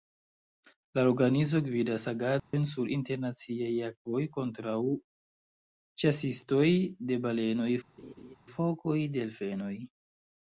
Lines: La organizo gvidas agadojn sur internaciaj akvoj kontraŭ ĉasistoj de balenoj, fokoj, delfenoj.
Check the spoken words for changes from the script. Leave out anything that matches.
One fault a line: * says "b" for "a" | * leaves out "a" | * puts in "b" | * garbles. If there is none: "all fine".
all fine